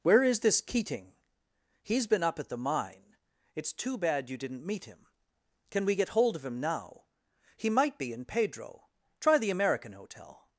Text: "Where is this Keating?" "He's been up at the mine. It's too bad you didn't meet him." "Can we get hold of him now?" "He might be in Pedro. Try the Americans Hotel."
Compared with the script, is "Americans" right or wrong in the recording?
wrong